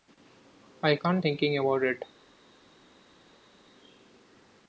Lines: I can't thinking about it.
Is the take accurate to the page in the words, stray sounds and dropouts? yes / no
yes